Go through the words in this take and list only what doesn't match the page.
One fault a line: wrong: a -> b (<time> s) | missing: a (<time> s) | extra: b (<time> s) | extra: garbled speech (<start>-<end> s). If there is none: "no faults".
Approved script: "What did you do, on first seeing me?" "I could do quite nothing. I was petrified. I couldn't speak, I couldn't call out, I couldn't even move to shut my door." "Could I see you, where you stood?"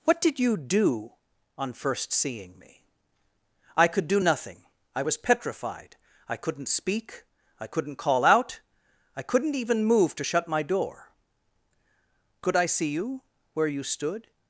missing: quite (4.2 s)